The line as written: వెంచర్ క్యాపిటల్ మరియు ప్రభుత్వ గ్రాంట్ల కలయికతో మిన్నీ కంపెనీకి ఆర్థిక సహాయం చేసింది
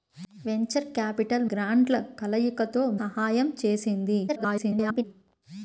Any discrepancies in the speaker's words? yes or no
yes